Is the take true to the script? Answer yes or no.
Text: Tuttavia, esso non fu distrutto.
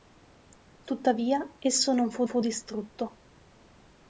no